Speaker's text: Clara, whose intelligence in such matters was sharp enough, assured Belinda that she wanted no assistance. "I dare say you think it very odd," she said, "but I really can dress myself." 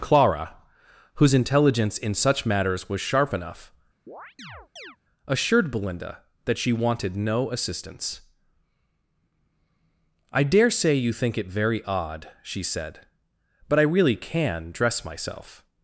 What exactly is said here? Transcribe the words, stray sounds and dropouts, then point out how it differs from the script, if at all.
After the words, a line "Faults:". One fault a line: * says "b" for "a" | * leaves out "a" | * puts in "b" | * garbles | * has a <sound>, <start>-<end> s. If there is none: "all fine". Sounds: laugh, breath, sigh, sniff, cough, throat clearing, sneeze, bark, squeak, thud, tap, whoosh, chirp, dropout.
Clara, whose intelligence in such matters was sharp enough, assured Belinda that she wanted no assistance. "I dare say you think it very odd," she said, "but I really can dress myself."
Faults:
* has a chirp, 4.1-5.0 s